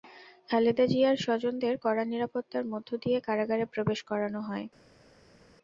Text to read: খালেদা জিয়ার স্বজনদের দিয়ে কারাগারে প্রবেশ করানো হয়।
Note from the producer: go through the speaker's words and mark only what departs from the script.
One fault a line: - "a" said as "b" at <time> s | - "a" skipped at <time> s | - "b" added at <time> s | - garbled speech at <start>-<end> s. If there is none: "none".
- "কড়া নিরাপত্তার মধ্য" added at 1.8 s